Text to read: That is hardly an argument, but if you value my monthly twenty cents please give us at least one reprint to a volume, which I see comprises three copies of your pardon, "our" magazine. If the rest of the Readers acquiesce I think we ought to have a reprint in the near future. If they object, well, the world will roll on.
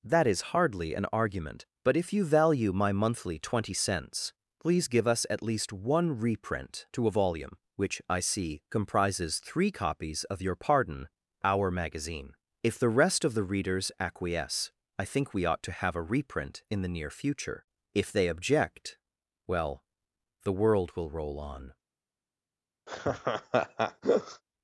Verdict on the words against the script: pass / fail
pass